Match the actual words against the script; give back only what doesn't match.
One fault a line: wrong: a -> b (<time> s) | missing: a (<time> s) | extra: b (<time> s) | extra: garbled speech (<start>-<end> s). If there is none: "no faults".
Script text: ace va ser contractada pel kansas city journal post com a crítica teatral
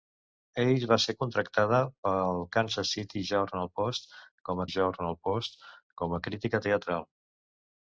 extra: journal post com (4.7 s)